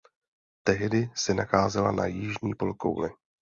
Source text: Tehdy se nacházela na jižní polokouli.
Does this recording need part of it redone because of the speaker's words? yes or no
no